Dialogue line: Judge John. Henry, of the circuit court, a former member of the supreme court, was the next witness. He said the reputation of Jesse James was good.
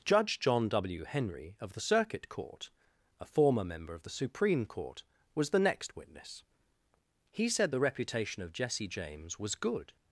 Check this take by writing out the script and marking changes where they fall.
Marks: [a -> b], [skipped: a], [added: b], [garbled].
Judge John. [added: W] Henry, of the circuit court, a former member of the supreme court, was the next witness. He said the reputation of Jesse James was good.